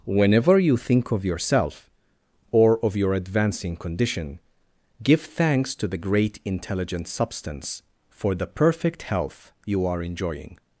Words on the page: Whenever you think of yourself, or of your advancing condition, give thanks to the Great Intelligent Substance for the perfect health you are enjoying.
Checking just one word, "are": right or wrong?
right